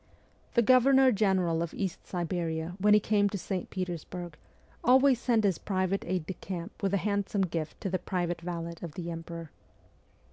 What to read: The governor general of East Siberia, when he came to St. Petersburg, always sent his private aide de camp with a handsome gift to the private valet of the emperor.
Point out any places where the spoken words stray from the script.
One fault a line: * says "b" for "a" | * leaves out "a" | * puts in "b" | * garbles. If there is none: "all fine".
all fine